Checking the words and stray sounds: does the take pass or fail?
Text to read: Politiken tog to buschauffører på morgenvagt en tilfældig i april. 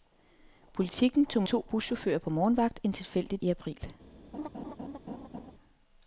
fail